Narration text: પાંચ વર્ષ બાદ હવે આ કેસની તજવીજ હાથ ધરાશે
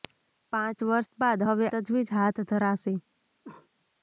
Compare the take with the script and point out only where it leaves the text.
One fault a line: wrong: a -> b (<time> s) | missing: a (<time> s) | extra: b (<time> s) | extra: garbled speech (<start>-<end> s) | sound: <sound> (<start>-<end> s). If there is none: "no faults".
missing: આ કેસની (1.7 s)
sound: cough (3.4-3.7 s)